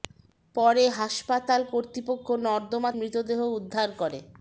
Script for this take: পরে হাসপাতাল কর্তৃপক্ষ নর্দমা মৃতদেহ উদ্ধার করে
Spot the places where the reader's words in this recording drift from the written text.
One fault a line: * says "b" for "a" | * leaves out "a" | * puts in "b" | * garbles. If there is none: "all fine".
all fine